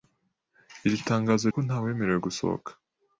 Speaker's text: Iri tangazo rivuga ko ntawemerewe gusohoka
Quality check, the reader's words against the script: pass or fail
fail